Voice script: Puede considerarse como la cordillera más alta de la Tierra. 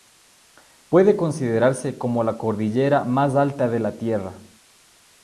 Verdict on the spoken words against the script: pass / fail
pass